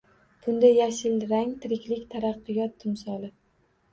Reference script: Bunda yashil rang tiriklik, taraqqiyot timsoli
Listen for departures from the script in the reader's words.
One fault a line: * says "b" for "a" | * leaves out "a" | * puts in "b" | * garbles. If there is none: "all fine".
all fine